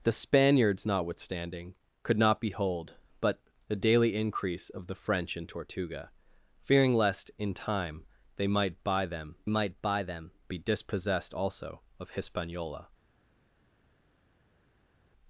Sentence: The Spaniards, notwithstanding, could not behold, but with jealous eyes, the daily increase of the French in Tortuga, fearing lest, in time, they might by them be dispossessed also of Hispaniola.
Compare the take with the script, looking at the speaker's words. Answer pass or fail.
fail